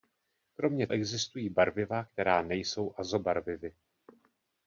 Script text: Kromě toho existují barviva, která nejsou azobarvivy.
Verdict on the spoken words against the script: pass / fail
fail